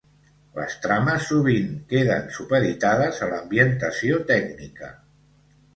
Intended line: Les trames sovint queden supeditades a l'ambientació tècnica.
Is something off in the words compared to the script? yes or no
no